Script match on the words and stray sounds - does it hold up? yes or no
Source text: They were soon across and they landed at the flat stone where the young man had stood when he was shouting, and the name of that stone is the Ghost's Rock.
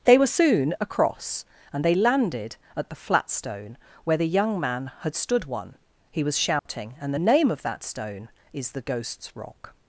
no